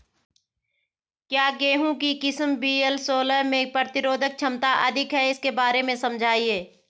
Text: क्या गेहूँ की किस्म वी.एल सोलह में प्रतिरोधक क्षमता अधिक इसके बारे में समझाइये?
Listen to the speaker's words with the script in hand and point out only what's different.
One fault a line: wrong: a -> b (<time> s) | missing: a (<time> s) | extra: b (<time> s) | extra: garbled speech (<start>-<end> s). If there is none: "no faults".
extra: है (5.1 s)